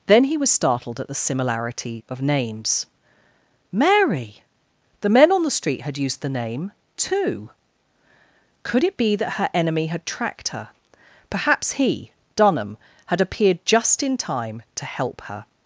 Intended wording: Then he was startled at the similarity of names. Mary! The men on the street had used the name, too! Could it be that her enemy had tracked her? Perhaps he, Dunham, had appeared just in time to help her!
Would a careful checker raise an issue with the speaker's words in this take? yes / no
no